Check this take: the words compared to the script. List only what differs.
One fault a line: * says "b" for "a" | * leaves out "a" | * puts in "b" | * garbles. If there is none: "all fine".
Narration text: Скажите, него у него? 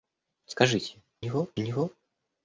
all fine